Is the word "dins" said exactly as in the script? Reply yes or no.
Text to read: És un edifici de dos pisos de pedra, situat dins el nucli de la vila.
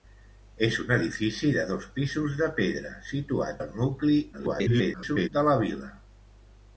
no